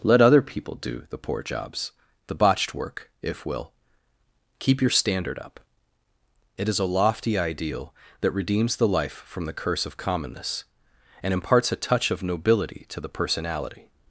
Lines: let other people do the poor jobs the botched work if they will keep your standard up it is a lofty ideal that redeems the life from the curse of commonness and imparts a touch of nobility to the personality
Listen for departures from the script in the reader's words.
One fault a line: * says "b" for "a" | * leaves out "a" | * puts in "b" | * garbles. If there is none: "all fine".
* leaves out "they"